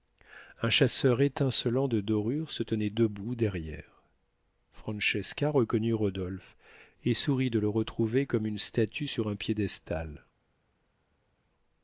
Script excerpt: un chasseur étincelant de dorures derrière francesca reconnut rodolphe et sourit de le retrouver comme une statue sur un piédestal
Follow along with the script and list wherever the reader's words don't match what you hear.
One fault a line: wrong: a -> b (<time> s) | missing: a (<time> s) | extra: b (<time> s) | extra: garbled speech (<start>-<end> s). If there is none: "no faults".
extra: se tenait debout (2.5 s)